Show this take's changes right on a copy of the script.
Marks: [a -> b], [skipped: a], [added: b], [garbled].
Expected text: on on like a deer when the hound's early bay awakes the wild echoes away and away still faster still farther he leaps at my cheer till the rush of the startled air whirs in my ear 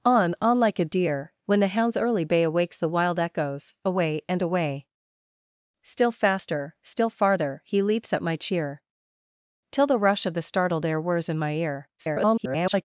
on on like a deer when the hound's early bay awakes the wild echoes away and away still faster still farther he leaps at my cheer till the rush of the startled air whirs in my ear [garbled]